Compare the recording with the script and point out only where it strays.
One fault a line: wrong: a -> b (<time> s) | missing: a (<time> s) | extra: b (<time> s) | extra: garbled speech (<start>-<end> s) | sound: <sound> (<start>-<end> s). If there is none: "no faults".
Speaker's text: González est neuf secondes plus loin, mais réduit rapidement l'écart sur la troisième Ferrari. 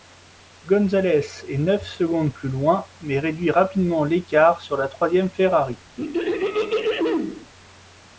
sound: throat clearing (6.0-7.5 s)